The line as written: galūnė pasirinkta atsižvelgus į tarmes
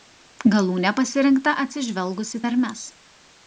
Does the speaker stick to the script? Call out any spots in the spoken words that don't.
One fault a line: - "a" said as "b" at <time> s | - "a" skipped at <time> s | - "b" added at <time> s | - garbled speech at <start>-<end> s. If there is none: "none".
none